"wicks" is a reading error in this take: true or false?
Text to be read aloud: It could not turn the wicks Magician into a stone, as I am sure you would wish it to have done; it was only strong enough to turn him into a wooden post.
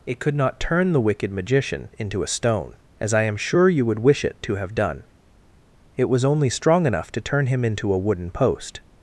true